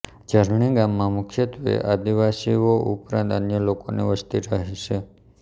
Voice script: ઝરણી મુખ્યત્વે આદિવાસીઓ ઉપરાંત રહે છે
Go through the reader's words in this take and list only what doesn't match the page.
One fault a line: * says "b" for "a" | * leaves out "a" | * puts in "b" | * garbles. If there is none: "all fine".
* puts in "ગામમાં"
* puts in "અન્ય લોકોની વસ્તી"